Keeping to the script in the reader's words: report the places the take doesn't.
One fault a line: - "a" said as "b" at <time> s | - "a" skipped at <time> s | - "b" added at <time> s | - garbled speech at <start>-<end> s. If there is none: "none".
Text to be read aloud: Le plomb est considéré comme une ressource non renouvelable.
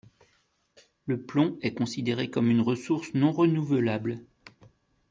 none